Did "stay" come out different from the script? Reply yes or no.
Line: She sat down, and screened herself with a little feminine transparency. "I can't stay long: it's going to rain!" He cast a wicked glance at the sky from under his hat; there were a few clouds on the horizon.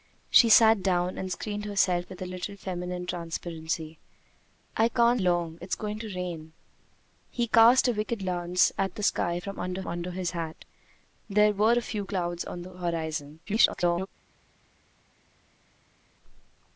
yes